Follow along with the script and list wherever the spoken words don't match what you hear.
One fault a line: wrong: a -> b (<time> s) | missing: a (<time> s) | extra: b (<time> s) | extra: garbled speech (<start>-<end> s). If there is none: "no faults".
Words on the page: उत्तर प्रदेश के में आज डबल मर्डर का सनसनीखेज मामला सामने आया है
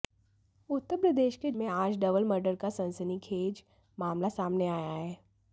no faults